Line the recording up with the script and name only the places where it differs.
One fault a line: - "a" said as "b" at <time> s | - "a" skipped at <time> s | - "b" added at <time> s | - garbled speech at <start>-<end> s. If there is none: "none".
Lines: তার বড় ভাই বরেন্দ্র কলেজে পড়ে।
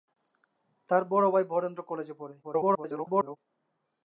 - garbled speech at 2.4-3.4 s